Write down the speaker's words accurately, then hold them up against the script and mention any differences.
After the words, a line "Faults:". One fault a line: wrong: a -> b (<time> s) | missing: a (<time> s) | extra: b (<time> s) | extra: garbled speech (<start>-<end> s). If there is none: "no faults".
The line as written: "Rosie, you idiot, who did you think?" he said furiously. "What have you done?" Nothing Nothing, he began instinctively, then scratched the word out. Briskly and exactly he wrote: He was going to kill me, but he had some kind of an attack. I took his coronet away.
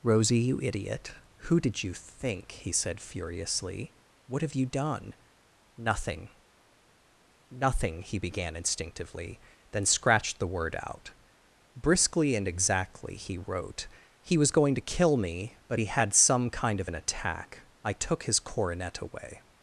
"Rosie, you idiot, who did you think?" he said furiously. "What have you done?" Nothing Nothing, he began instinctively, then scratched the word out. Briskly and exactly he wrote: He was going to kill me, but he had some kind of an attack. I took his coronet away.
Faults:
no faults